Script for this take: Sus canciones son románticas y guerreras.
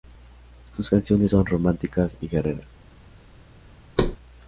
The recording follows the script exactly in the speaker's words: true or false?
true